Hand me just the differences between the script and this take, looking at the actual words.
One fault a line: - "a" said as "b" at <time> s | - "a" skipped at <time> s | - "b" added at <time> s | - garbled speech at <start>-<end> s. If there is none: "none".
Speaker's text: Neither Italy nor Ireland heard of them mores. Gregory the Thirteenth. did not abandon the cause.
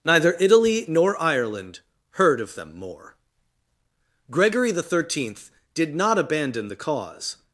- "mores" said as "more" at 2.8 s